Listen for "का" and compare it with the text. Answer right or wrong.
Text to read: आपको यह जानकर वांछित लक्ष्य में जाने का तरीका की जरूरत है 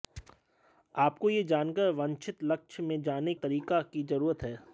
wrong